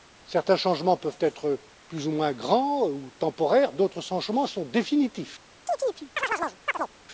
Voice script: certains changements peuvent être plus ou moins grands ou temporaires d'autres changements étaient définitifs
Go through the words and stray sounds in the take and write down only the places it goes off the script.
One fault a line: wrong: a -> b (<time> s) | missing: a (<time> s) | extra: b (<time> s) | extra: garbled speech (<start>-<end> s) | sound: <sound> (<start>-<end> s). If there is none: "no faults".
wrong: étaient -> sont (4.5 s)
sound: chirp (5.7-6.9 s)